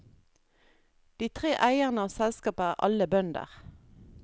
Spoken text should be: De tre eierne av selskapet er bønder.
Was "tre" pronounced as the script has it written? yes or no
yes